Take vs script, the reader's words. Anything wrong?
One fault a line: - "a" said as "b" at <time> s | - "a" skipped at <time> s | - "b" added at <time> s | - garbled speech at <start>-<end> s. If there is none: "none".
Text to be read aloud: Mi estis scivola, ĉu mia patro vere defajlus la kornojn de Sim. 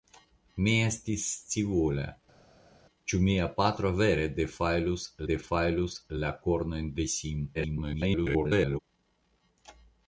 - "defajlus" added at 5.3 s
- garbled speech at 7.5-8.8 s